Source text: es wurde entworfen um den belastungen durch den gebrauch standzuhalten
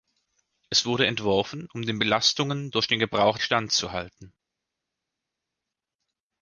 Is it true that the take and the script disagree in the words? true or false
false